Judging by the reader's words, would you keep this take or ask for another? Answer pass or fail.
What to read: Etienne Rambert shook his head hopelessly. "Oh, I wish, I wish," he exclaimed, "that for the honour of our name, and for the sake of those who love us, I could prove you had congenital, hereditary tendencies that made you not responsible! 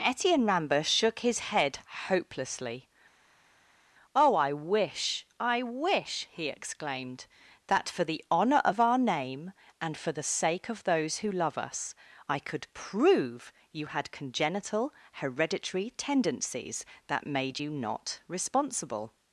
pass